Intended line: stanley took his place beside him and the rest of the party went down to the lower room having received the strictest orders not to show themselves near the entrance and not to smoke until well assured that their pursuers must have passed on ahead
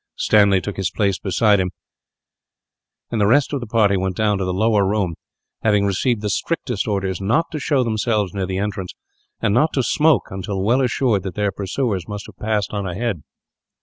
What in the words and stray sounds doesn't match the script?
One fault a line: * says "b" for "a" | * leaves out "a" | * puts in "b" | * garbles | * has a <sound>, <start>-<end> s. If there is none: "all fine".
all fine